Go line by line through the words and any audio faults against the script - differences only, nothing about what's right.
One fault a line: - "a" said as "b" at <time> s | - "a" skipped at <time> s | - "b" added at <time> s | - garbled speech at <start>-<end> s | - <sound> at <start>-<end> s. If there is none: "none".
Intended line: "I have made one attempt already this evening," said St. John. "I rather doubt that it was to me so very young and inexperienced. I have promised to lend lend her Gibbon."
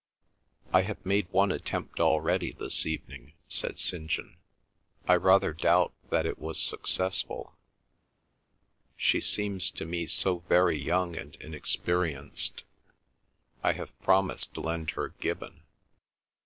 - "successful She seems" added at 6.6 s
- "lend" skipped at 14.9 s